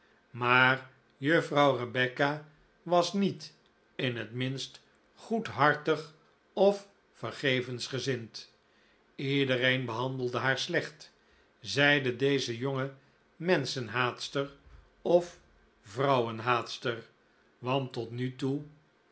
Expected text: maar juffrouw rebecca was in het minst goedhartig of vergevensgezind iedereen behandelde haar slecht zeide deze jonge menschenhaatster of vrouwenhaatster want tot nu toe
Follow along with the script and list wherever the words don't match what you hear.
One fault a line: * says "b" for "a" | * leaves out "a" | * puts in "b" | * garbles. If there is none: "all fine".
* puts in "niet"